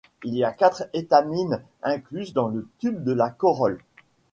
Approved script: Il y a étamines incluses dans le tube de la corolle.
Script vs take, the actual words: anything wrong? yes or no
yes